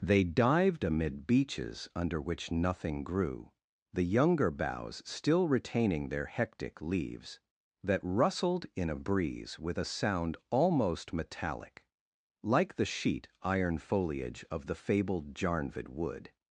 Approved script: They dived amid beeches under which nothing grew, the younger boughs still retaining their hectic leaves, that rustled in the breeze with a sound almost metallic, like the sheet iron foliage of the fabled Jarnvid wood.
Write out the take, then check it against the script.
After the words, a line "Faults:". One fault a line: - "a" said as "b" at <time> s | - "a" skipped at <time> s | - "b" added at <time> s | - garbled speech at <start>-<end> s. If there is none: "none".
They dived amid beeches under which nothing grew, the younger boughs still retaining their hectic leaves, that rustled in a breeze with a sound almost metallic, like the sheet iron foliage of the fabled Jarnvid wood.
Faults:
- "the" said as "a" at 8.9 s